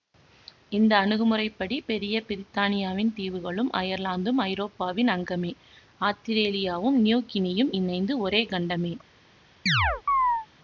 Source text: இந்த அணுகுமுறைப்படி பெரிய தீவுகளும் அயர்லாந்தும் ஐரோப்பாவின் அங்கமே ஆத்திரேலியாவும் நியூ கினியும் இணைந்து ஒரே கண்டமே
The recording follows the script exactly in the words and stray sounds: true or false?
false